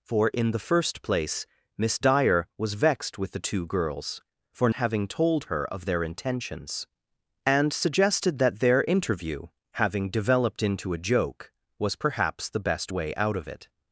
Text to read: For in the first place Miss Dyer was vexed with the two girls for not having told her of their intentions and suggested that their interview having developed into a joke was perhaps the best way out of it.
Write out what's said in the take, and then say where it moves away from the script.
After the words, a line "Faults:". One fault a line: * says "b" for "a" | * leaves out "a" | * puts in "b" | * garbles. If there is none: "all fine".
For in the first place Miss Dyer was vexed with the two girls for having told her of their intentions and suggested that their interview having developed into a joke was perhaps the best way out of it.
Faults:
* leaves out "not"